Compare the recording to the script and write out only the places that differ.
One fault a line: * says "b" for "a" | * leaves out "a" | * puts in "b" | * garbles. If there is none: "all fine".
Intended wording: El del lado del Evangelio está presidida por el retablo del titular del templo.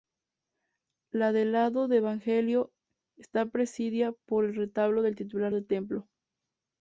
* says "La" for "El"